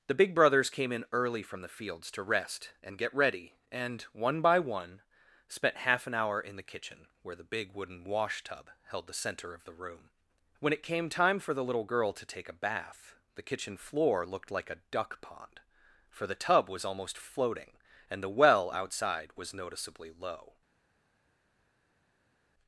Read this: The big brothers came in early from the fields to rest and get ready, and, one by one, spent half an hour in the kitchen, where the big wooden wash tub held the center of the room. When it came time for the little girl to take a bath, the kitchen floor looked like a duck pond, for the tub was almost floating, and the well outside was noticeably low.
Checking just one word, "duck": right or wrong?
right